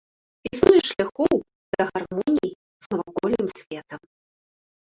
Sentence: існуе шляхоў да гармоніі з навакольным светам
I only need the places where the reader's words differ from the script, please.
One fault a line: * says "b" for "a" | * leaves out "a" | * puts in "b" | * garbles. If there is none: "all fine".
all fine